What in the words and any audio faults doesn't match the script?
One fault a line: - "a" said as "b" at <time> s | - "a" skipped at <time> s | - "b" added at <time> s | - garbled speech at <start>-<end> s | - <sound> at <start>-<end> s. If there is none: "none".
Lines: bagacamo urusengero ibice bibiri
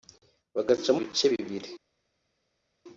- "urusengero" skipped at 1.0 s